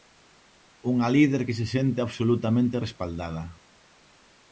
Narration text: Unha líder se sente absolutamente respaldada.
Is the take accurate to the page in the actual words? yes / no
no